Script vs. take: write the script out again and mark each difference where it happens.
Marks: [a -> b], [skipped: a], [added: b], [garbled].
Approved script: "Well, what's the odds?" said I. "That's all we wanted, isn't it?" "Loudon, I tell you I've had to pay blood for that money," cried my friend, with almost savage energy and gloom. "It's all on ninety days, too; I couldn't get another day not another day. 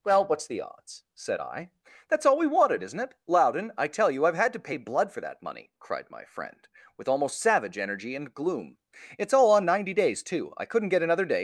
"Well, what's the odds?" said I. "That's all we wanted, isn't it?" "Loudon, I tell you I've had to pay blood for that money," cried my friend, with almost savage energy and gloom. "It's all on ninety days, too; I couldn't get another day [skipped: not another day.]